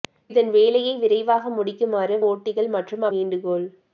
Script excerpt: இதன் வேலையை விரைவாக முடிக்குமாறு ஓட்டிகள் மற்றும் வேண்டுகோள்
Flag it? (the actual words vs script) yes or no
no